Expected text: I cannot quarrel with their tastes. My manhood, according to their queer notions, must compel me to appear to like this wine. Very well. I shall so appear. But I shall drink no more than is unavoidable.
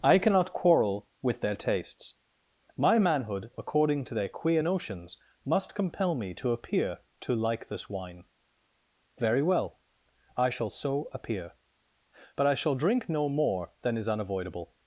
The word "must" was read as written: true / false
true